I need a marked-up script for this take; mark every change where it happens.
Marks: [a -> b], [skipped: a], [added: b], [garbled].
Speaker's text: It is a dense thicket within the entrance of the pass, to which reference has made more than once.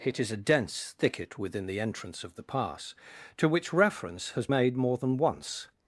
It is a dense thicket within the entrance of the pass, to which reference has made more than once.